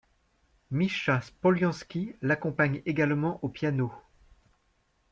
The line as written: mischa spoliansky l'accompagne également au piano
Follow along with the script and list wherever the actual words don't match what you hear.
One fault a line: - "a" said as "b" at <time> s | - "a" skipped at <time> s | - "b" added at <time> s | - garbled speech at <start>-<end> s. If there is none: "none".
none